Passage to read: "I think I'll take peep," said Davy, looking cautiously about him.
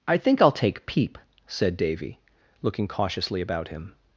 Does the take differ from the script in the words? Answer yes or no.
no